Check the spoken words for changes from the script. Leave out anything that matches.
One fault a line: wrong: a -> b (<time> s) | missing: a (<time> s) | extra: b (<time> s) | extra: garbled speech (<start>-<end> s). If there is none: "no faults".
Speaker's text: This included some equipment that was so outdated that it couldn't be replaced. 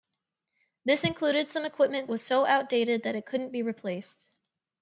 missing: that (2.1 s)